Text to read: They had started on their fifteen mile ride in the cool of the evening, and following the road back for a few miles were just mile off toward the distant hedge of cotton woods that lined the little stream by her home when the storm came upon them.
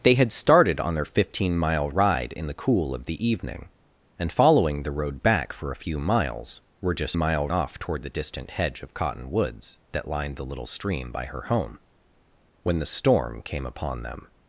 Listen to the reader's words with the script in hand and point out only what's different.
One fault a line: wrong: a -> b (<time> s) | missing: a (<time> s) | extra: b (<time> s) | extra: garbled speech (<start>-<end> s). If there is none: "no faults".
no faults